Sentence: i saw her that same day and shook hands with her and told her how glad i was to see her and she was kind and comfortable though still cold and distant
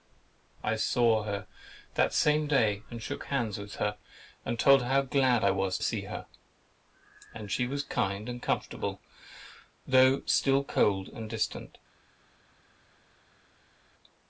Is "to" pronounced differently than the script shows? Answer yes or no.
yes